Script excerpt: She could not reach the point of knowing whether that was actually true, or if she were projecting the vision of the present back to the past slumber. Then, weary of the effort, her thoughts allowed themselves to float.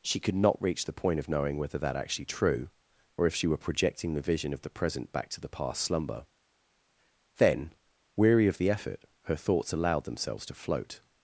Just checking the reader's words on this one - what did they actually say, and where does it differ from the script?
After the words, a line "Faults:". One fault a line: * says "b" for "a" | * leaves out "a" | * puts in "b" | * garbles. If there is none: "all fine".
She could not reach the point of knowing whether that actually true, or if she were projecting the vision of the present back to the past slumber. Then, weary of the effort, her thoughts allowed themselves to float.
Faults:
* leaves out "was"